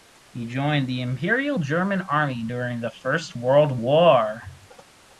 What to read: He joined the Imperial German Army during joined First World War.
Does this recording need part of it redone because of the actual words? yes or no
yes